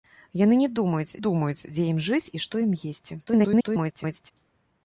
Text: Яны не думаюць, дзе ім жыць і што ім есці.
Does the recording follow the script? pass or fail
fail